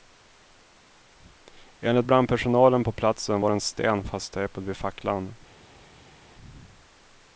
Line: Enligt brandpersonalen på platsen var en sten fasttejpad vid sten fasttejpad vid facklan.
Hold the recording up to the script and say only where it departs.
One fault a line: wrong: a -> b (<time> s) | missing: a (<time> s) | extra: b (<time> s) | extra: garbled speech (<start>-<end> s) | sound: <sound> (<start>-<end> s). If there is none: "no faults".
missing: sten fasttejpad vid (4.8 s)